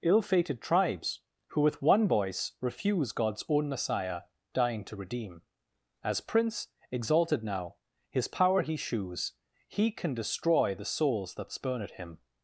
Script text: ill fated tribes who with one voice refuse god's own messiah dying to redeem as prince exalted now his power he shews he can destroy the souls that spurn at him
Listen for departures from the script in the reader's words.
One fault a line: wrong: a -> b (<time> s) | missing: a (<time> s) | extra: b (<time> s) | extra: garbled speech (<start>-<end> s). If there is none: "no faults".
no faults